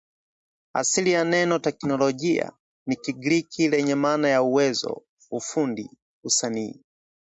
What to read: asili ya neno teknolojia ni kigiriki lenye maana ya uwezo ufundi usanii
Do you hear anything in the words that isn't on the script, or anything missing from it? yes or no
no